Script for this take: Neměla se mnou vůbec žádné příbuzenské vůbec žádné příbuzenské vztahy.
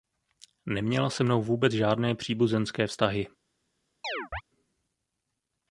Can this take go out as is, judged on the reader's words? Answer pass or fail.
fail